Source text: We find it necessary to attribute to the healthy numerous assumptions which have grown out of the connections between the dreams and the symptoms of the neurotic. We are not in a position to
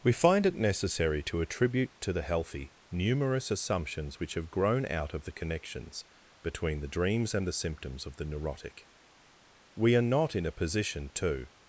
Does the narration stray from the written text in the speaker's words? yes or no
no